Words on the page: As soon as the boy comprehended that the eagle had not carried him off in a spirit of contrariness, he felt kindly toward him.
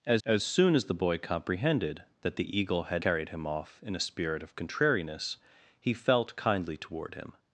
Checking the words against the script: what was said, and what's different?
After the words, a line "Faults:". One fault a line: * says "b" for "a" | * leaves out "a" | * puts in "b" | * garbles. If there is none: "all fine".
As as soon as the boy comprehended that the eagle had carried him off in a spirit of contrariness, he felt kindly toward him.
Faults:
* puts in "as"
* leaves out "not"